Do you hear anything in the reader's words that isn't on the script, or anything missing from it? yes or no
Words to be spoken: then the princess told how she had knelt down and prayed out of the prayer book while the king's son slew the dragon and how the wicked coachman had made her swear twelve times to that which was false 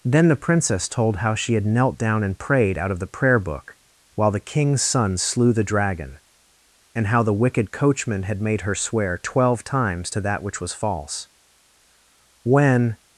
yes